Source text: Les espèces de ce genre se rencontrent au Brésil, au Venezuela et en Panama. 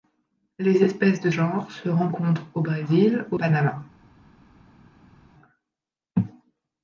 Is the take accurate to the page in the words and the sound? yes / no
no